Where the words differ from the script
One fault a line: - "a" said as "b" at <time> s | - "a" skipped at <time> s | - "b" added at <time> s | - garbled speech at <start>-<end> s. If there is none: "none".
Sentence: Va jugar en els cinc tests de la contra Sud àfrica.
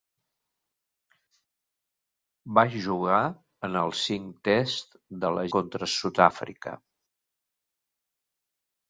none